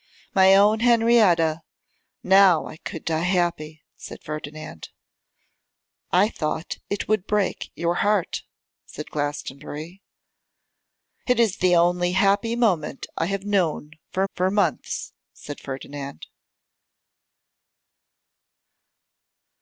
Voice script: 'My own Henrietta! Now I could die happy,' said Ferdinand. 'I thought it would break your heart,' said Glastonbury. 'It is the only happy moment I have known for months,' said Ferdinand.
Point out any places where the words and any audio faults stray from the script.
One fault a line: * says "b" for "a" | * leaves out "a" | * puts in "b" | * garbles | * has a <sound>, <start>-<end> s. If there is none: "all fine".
* puts in "for"